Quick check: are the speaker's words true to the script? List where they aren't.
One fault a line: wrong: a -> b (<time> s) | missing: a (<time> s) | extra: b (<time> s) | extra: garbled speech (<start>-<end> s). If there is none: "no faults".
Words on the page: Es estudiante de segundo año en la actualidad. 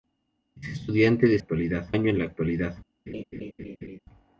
wrong: segundo -> actualidad (1.4 s)